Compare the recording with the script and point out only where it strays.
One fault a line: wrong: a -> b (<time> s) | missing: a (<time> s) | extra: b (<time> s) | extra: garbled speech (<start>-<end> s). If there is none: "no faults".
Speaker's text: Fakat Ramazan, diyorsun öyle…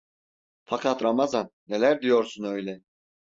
extra: neler (1.7 s)